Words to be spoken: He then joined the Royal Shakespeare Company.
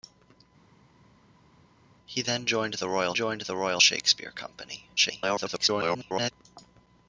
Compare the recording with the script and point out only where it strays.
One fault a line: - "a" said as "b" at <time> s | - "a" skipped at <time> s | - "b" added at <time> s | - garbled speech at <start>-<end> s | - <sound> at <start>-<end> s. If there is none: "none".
- "joined the Royal" added at 3.1 s
- garbled speech at 5.0-6.3 s